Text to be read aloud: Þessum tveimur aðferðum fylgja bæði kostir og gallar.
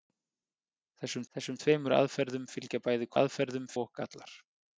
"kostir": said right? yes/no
no